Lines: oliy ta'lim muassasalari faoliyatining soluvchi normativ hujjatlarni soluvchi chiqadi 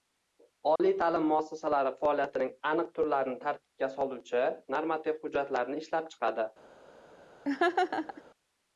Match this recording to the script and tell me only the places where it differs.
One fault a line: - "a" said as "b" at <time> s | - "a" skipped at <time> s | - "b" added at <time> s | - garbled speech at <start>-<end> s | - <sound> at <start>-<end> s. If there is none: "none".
- dropout at 0.8-0.8 s
- "aniq turlarini tartibga" added at 2.7 s
- "soluvchi" said as "ishlab" at 5.8 s
- laugh at 7.4-8.2 s